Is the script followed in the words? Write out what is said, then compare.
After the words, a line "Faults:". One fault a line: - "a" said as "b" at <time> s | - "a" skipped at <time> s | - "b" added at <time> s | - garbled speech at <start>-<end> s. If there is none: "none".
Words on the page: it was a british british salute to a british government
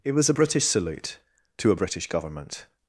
it was a british salute to a british government
Faults:
- "british" skipped at 0.7 s